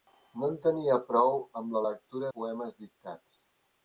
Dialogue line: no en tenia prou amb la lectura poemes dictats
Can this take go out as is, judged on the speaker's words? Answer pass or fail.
pass